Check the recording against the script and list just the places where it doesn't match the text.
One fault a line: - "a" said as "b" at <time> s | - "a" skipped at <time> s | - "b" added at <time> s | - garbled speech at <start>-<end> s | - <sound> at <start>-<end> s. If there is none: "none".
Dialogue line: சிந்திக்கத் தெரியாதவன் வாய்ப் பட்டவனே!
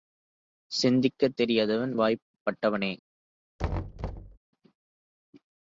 - thud at 3.6-4.4 s